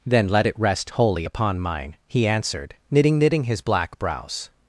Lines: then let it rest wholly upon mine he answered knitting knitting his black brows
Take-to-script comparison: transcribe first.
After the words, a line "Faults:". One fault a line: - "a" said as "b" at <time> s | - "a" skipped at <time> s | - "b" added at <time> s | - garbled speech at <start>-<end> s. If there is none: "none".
then let it rest wholly upon mine he answered knitting knitting his black brows
Faults:
none